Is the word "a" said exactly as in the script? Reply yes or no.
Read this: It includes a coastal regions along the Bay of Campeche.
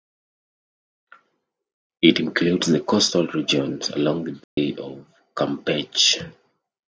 no